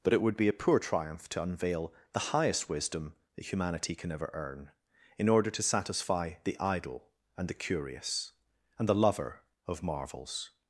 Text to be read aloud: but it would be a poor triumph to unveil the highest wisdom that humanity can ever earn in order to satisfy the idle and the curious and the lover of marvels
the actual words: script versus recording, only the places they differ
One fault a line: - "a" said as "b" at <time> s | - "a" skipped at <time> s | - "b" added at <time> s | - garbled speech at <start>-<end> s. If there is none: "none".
none